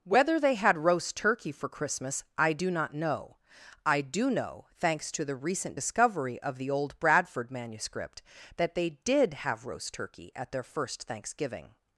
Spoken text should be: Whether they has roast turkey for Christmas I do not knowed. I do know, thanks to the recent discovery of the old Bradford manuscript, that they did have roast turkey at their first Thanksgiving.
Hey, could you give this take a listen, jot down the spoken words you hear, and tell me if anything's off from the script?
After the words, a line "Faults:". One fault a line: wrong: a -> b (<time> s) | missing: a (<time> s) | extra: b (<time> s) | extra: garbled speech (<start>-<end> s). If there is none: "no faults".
Whether they had roast turkey for Christmas I do not know. I do know, thanks to the recent discovery of the old Bradford manuscript, that they did have roast turkey at their first Thanksgiving.
Faults:
wrong: has -> had (0.6 s)
wrong: knowed -> know (2.9 s)